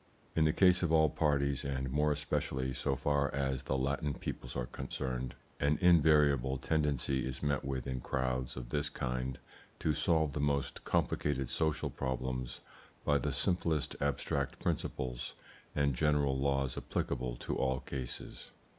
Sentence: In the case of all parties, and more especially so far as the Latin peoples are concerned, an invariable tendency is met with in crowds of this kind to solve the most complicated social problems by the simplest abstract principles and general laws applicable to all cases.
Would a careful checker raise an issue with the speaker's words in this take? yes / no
no